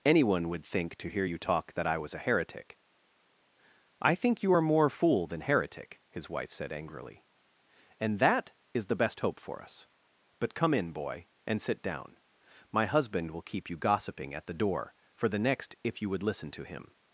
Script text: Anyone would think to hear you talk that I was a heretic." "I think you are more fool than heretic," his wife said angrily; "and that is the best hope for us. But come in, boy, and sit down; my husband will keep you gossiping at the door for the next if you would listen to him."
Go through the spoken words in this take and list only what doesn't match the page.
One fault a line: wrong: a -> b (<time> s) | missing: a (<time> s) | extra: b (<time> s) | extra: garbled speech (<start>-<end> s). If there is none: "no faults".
no faults